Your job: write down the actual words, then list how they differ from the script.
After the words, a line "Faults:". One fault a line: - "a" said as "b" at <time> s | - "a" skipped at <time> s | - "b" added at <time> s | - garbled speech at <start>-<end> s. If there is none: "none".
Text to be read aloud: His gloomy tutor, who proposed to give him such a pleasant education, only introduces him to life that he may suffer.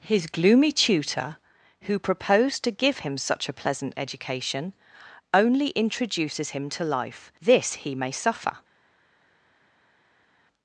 His gloomy tutor, who proposed to give him such a pleasant education, only introduces him to life this he may suffer.
Faults:
- "that" said as "this" at 7.4 s